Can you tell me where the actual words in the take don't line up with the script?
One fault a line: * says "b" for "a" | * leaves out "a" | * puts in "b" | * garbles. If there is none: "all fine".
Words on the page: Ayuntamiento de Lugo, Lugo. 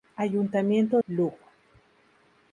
* leaves out "de Lugo"